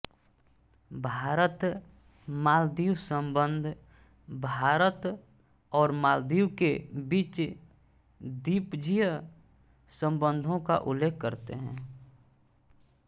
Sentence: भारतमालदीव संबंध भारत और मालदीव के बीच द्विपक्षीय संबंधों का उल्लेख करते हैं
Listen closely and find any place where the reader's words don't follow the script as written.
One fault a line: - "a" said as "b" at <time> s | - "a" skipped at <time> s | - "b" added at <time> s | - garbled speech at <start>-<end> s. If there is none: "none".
none